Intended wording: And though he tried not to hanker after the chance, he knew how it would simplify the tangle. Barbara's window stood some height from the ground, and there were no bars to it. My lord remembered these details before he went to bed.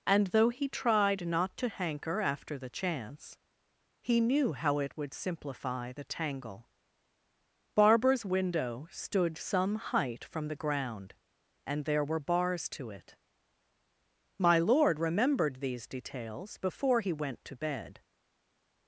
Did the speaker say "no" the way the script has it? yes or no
no